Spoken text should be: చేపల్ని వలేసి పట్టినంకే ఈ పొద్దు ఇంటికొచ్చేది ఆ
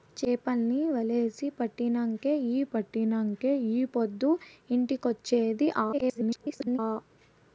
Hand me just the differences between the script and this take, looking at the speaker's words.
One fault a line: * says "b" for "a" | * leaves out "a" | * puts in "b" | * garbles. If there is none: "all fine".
* puts in "పట్టినంకే ఈ"
* garbles